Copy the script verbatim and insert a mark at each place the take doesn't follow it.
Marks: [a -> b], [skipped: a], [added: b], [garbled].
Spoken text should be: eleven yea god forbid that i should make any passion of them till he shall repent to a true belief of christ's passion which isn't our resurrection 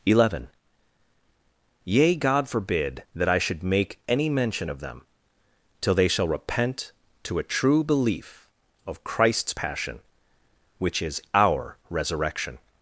eleven yea god forbid that i should make any [passion -> mention] of them till [he -> they] shall repent to a true belief of christ's passion which [isn't -> is] our resurrection